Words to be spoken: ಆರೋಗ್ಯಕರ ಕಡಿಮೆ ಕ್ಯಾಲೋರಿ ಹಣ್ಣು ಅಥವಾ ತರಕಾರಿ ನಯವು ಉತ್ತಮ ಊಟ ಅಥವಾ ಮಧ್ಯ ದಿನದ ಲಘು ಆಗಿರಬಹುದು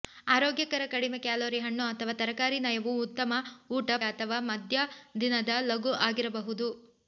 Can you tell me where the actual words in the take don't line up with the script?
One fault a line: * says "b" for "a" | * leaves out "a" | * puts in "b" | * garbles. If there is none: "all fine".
all fine